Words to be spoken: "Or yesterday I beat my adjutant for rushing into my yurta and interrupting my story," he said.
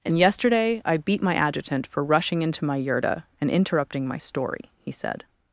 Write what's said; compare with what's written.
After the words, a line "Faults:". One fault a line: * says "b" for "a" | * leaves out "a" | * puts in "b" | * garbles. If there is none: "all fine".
"And yesterday I beat my adjutant for rushing into my yurta and interrupting my story," he said.
Faults:
* says "And" for "Or"